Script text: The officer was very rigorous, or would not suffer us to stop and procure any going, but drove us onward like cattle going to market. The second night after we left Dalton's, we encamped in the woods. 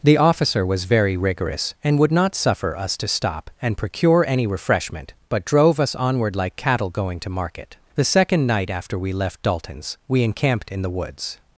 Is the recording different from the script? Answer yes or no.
yes